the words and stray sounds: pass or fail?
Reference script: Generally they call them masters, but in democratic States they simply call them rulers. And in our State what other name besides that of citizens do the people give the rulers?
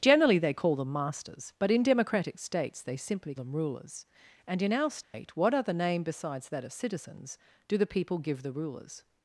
fail